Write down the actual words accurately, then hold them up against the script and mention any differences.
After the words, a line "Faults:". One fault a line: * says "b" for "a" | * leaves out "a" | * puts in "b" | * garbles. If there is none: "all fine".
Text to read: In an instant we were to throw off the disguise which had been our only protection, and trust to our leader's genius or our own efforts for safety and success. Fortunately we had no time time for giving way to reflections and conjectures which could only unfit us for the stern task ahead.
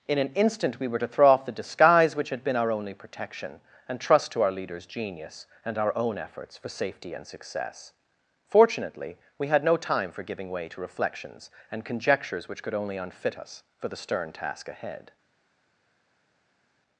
In an instant we were to throw off the disguise which had been our only protection, and trust to our leader's genius and our own efforts for safety and success. Fortunately we had no time for giving way to reflections and conjectures which could only unfit us for the stern task ahead.
Faults:
* says "and" for "or"
* leaves out "time"